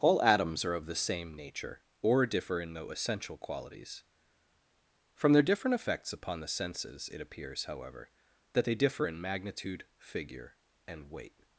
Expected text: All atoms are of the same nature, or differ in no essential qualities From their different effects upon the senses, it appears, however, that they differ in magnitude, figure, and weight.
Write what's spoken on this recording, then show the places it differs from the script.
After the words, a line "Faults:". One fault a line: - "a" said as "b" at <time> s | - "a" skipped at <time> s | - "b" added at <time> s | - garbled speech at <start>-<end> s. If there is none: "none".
All atoms are of the same nature, or differ in no essential qualities From their different effects upon the senses, it appears, however, that they differ in magnitude, figure, and weight.
Faults:
none